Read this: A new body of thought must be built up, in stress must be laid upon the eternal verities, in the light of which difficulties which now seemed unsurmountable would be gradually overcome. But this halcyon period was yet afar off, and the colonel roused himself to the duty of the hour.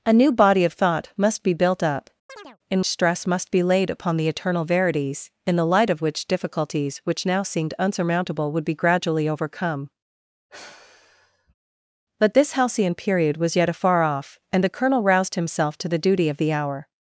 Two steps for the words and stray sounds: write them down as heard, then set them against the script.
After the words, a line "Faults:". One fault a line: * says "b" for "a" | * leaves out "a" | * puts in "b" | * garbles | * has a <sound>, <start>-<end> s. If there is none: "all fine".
A new body of thought must be built up, in stress must be laid upon the eternal verities, in the light of which difficulties which now seemed unsurmountable would be gradually overcome. But this halcyon period was yet afar off, and the colonel roused himself to the duty of the hour.
Faults:
* has a chirp, 2.3-2.6 s
* has a sigh, 10.5-11.5 s